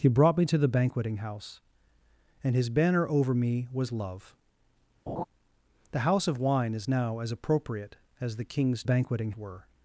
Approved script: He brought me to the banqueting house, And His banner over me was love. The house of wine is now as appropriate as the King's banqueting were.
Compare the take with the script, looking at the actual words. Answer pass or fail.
pass